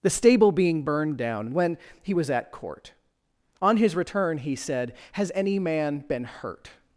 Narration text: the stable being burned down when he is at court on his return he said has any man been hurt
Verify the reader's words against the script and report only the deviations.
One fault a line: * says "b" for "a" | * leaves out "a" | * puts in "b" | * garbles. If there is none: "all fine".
* says "was" for "is"